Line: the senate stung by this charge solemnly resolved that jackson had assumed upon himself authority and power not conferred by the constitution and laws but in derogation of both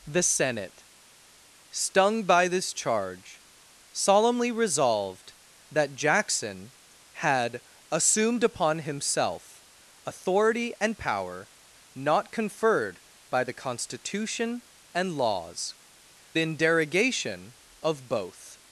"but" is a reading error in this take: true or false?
true